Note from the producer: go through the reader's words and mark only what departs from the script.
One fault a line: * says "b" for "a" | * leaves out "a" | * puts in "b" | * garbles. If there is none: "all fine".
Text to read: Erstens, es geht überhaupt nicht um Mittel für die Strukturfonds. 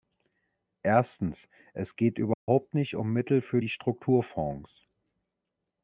all fine